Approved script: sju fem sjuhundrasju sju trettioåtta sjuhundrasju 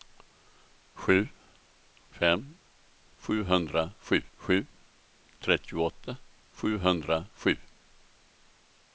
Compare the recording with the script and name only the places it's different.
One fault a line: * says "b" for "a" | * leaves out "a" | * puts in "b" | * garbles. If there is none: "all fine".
all fine